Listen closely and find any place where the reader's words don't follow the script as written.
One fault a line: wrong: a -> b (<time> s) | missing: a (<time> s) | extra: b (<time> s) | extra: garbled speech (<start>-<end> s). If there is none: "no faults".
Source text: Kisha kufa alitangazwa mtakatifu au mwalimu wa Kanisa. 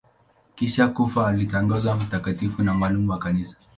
wrong: au -> na (2.6 s)